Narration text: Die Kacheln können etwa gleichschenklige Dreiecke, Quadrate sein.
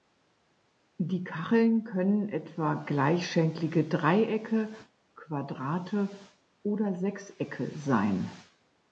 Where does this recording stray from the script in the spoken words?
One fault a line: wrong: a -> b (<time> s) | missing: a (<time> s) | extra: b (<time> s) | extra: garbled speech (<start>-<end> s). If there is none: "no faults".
extra: oder Sechsecke (6.6 s)